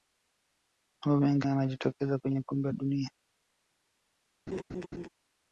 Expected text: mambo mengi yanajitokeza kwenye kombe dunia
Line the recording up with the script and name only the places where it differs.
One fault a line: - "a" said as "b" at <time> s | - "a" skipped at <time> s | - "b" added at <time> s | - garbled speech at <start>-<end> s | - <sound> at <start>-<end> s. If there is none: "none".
- laugh at 4.5-5.1 s